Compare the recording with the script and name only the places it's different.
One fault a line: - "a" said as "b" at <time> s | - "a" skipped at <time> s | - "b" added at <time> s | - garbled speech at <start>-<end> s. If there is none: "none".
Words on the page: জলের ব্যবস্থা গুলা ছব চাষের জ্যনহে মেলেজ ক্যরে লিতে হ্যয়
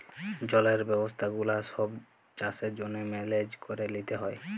none